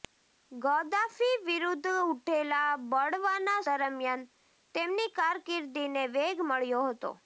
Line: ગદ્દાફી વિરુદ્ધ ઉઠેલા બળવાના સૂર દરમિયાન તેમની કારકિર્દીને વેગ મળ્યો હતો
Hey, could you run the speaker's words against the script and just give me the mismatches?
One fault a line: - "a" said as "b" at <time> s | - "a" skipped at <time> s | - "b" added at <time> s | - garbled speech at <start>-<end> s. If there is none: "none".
- "સૂર" skipped at 3.6 s